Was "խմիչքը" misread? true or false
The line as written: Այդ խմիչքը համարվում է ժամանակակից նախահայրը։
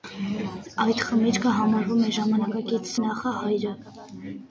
false